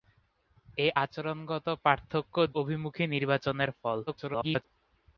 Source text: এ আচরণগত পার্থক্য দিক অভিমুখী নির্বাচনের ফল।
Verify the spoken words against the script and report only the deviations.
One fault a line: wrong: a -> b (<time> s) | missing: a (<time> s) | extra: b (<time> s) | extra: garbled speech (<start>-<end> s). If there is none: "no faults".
missing: দিক (2.3 s)
extra: garbled speech (4.1-4.6 s)